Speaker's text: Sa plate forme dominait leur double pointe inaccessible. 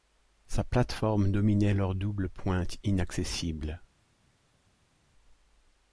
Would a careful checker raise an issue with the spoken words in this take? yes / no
no